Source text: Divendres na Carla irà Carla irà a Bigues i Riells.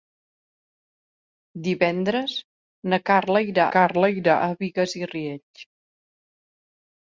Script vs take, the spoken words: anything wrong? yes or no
no